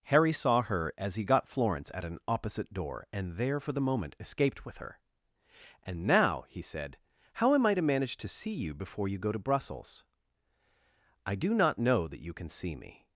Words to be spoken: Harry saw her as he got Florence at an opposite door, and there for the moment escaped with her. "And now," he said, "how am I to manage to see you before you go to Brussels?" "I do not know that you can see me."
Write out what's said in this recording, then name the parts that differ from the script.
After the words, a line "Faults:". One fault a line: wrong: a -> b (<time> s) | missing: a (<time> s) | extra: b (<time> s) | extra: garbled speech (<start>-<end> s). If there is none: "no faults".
Harry saw her as he got Florence at an opposite door, and there for the moment escaped with her. "And now," he said, "how am I to manage to see you before you go to Brussels?" "I do not know that you can see me."
Faults:
no faults